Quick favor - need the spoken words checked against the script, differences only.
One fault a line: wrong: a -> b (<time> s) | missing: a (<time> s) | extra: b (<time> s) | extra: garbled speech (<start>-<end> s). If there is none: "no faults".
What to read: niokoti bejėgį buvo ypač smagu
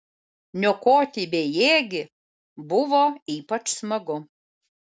no faults